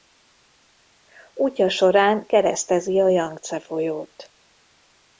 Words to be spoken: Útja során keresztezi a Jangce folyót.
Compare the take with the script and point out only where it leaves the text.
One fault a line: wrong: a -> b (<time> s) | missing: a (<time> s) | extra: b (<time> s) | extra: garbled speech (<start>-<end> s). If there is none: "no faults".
no faults